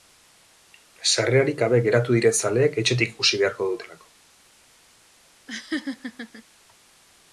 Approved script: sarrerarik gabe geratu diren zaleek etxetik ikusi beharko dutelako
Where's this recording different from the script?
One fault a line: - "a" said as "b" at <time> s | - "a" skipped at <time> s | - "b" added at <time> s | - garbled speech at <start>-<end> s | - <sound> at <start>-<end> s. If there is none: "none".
- laugh at 5.5-6.4 s